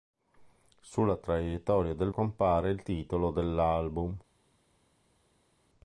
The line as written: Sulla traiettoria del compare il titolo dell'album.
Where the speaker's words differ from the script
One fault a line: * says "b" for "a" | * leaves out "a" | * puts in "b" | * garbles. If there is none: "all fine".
all fine